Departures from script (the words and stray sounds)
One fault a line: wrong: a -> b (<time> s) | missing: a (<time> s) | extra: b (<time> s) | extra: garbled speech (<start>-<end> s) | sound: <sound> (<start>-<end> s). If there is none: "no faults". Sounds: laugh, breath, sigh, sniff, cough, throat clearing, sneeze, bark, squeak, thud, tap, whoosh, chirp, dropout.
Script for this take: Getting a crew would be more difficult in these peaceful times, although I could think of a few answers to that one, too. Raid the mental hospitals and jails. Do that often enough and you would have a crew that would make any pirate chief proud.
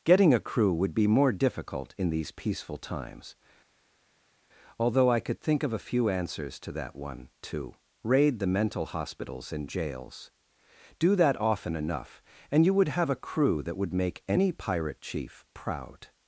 no faults